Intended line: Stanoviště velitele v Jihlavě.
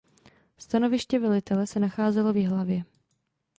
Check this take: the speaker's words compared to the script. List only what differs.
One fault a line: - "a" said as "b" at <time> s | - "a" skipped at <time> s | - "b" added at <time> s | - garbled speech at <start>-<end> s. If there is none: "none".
- "se nacházelo" added at 1.7 s